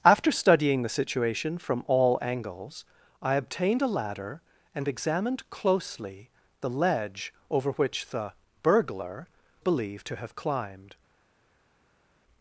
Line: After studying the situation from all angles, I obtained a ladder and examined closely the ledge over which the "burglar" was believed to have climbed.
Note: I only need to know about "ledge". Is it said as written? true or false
true